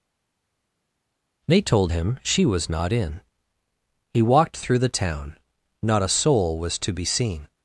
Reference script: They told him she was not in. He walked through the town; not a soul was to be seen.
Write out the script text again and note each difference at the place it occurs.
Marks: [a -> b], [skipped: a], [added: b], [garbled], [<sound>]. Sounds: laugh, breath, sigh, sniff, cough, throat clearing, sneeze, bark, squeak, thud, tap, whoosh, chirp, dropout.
They told him she was not in. He walked through the town; not a soul was to be seen.